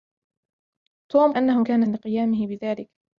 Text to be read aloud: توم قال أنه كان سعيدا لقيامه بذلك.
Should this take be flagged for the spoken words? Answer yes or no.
yes